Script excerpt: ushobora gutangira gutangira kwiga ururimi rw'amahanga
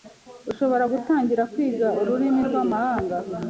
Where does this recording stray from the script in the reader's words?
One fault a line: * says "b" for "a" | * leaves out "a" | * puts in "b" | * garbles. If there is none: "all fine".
* leaves out "gutangira"